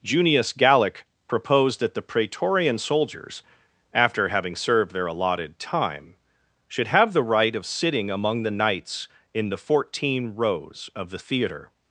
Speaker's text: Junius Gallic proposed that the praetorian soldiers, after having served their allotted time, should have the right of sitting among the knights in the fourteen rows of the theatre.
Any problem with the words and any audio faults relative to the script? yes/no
no